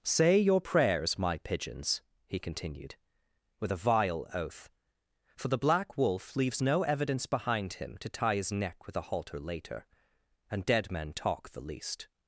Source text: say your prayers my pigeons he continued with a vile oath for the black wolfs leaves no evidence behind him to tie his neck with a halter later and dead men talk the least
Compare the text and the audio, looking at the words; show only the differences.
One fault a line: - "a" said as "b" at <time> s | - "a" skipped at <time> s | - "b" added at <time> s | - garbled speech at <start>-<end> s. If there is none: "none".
- "wolfs" said as "wolf" at 6.0 s